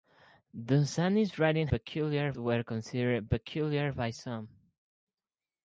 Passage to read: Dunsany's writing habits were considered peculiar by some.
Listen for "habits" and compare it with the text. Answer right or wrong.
wrong